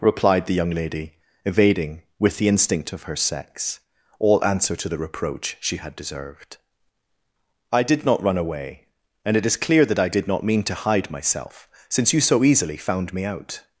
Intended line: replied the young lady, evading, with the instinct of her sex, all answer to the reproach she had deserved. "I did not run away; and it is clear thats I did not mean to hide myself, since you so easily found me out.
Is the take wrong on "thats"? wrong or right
wrong